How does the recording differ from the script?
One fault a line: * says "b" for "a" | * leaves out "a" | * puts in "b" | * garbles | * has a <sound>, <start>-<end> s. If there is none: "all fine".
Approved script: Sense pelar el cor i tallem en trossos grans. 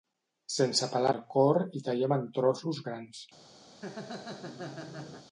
* has a laugh, 3.7-5.3 s